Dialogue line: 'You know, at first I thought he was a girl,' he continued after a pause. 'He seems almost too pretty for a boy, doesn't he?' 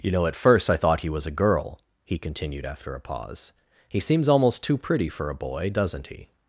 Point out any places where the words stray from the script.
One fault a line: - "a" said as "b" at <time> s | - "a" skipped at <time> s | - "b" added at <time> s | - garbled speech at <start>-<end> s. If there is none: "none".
none